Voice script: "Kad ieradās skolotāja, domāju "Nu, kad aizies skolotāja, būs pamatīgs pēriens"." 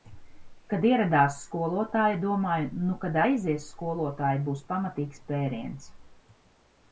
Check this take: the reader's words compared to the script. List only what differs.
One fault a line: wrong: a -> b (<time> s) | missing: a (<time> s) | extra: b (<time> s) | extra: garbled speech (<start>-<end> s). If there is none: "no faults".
no faults